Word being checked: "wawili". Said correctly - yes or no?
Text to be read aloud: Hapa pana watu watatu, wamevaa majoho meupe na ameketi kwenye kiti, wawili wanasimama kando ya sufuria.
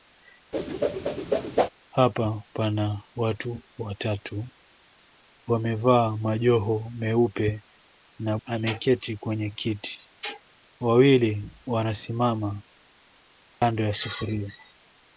yes